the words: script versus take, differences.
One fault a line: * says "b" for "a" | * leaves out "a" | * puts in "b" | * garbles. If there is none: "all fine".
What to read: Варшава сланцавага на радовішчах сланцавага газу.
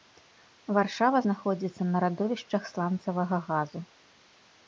* says "знаходзіцца" for "сланцавага"